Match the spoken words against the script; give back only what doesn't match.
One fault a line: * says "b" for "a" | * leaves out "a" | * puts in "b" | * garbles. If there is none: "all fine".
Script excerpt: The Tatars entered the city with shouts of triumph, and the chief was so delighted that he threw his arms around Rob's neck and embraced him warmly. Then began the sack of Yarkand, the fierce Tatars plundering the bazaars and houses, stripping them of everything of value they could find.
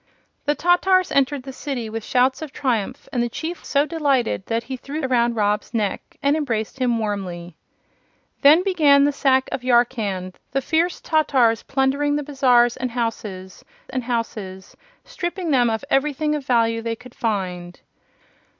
* leaves out "was"
* leaves out "his arms"
* puts in "and houses"